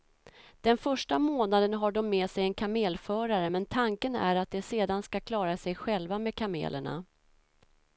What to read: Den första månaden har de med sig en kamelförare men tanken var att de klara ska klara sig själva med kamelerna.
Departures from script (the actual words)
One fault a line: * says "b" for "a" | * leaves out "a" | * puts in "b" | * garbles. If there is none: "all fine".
* says "är" for "var"
* says "sedan" for "klara"